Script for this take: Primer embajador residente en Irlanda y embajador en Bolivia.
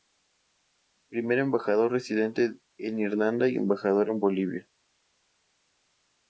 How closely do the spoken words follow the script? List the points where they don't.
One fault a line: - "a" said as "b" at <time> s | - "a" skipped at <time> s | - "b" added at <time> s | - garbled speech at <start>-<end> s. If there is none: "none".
none